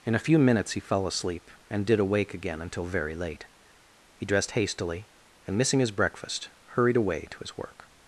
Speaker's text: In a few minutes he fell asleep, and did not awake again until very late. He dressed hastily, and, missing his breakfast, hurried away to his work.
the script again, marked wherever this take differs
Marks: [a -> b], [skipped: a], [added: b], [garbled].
In a few minutes he fell asleep, and did [skipped: not] awake again until very late. He dressed hastily, and, missing his breakfast, hurried away to his work.